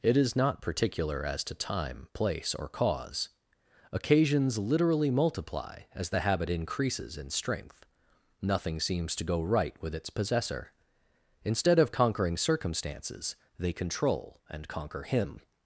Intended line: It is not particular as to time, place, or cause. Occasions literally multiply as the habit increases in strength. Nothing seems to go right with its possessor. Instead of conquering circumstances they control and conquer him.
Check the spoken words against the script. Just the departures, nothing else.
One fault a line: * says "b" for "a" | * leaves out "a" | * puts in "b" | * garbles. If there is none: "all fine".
all fine